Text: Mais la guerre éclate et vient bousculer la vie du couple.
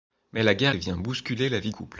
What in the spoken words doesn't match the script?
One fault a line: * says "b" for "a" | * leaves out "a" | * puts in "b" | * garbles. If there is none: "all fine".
* leaves out "éclate"
* leaves out "du"